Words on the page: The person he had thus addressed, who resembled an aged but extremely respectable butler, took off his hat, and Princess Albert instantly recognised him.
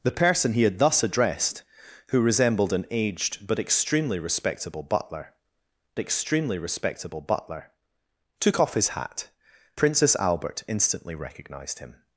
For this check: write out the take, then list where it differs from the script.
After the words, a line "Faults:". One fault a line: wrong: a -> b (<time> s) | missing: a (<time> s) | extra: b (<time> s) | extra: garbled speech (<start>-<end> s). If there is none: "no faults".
The person he had thus addressed, who resembled an aged but extremely respectable butler extremely respectable butler, took off his hat, Princess Albert instantly recognised him.
Faults:
extra: extremely respectable butler (6.0 s)
missing: and (9.3 s)